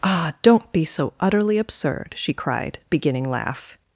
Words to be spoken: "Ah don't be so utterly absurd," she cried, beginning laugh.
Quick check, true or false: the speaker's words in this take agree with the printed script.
true